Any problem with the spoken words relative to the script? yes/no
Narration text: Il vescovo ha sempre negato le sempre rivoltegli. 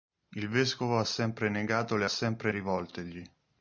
no